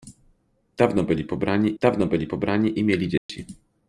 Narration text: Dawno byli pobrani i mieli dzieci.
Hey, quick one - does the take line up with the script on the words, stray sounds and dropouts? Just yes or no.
no